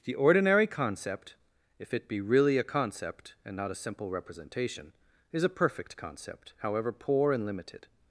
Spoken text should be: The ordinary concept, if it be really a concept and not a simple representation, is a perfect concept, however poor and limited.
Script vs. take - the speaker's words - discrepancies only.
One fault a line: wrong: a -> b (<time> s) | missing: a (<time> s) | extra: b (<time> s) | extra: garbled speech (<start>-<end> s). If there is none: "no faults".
no faults